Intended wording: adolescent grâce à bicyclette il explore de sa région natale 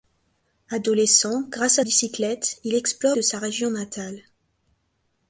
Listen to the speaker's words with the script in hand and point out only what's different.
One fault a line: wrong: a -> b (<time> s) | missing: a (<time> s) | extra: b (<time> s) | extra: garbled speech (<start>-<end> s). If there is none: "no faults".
no faults